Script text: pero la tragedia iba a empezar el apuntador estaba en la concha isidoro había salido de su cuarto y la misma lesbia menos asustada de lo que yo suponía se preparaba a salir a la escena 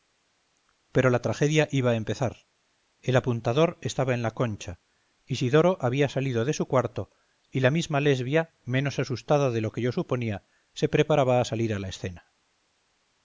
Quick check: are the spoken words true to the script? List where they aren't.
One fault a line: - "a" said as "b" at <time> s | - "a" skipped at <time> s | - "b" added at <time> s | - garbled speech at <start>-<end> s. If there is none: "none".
none